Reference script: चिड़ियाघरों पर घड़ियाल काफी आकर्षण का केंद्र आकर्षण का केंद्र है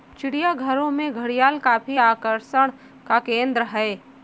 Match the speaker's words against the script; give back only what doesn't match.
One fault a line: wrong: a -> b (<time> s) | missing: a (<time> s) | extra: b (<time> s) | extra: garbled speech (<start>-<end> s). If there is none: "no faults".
wrong: पर -> में (0.9 s)
missing: आकर्षण का केंद्र (3.6 s)